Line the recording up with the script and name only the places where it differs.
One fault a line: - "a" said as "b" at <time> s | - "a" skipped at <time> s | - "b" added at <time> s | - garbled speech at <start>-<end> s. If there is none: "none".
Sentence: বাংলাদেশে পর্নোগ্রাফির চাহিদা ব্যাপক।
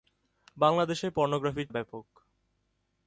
- "চাহিদা" skipped at 1.7 s